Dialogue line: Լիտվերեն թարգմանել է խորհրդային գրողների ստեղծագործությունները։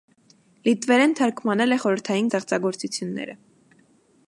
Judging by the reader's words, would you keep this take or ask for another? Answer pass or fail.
fail